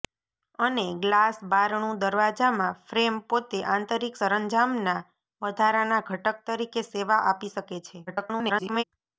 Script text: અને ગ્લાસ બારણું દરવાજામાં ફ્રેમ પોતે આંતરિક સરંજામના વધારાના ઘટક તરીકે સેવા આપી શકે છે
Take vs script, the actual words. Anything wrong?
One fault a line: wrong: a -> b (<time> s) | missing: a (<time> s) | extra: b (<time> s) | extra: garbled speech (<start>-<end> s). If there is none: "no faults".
extra: garbled speech (8.1-8.8 s)